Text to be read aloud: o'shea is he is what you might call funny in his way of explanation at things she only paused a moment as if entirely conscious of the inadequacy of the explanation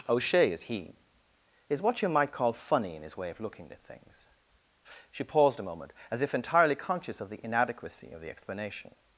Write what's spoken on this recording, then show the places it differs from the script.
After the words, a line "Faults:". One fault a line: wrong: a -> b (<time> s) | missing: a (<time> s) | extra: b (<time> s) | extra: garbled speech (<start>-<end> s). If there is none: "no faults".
o'shea is he is what you might call funny in his way of looking at things she paused a moment as if entirely conscious of the inadequacy of the explanation
Faults:
wrong: explanation -> looking (3.4 s)
missing: only (5.2 s)